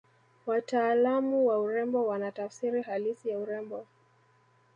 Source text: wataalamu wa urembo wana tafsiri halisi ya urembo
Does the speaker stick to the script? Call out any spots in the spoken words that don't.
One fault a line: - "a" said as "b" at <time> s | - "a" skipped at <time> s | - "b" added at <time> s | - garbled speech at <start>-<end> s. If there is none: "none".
none